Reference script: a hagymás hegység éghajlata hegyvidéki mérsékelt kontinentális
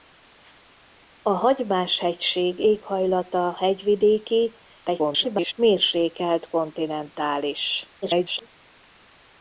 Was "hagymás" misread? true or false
false